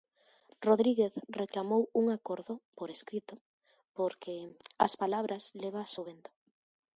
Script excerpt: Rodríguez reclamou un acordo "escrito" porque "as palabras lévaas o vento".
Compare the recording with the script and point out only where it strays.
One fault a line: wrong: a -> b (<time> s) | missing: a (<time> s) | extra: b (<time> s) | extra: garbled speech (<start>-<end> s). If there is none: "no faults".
extra: por (2.8 s)